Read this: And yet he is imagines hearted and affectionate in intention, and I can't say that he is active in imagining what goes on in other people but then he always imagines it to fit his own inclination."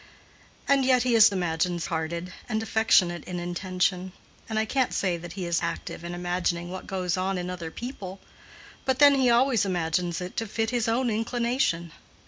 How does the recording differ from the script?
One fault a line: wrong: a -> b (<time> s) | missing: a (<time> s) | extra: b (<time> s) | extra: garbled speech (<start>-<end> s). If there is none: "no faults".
no faults